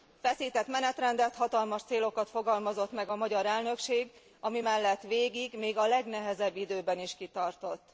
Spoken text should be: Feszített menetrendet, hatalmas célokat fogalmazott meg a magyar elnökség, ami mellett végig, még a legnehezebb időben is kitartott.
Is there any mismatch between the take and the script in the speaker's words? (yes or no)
no